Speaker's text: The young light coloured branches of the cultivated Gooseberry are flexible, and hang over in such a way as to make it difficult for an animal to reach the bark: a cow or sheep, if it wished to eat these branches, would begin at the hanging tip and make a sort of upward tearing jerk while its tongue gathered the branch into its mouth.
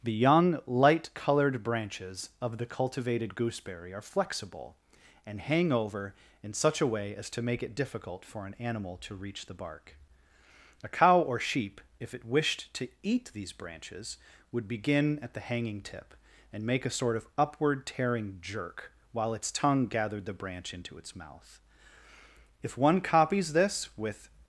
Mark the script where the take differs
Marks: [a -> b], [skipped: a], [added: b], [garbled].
The young light coloured branches of the cultivated Gooseberry are flexible, and hang over in such a way as to make it difficult for an animal to reach the bark: a cow or sheep, if it wished to eat these branches, would begin at the hanging tip and make a sort of upward tearing jerk while its tongue gathered the branch into its mouth. [added: If one copies this with]